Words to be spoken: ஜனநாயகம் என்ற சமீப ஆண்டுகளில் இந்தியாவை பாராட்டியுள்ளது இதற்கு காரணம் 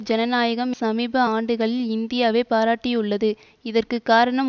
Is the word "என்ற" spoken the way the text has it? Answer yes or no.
no